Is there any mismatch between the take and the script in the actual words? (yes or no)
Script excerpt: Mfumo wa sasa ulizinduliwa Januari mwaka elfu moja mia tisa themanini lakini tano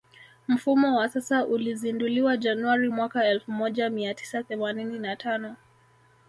yes